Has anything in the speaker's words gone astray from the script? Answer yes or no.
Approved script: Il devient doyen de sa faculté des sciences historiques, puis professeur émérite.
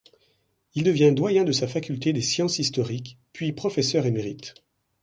no